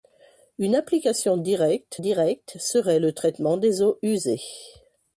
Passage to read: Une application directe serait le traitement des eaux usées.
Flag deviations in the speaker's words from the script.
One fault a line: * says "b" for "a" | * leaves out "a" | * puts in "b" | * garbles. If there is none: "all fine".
* puts in "directe"